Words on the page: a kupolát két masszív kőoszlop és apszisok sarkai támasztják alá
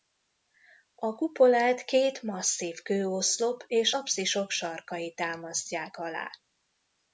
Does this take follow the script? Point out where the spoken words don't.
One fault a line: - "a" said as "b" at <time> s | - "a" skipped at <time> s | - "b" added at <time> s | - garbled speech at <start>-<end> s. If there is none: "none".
none